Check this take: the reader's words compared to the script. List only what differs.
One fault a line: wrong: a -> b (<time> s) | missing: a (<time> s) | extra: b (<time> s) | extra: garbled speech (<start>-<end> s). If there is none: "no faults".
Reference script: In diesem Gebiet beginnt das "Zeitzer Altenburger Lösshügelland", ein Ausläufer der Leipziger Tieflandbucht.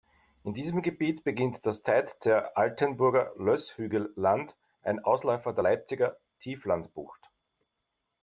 no faults